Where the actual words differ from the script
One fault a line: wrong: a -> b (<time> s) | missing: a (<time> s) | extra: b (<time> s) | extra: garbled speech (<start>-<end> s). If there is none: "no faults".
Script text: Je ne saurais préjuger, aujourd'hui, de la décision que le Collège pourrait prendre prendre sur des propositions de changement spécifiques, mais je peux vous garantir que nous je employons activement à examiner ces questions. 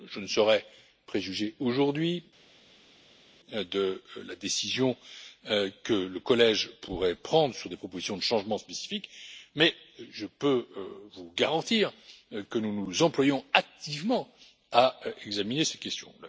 missing: prendre (7.5 s)
wrong: je -> nous (12.7 s)